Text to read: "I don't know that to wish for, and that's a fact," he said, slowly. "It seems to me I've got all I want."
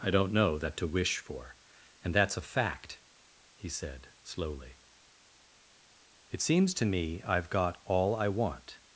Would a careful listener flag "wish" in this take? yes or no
no